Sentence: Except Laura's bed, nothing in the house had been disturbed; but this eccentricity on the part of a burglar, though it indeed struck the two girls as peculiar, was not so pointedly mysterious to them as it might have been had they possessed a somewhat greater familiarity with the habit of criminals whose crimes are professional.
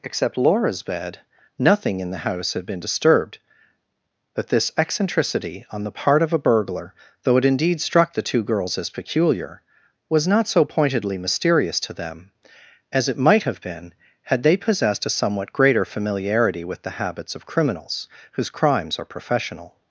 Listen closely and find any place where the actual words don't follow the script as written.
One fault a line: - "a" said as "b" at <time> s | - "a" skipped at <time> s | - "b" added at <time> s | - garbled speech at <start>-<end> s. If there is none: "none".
- "habit" said as "habits" at 17.0 s